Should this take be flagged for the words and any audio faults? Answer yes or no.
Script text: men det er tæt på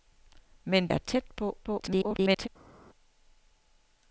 yes